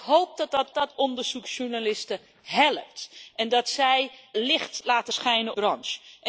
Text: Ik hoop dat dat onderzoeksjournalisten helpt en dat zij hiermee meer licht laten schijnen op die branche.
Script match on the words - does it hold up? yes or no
no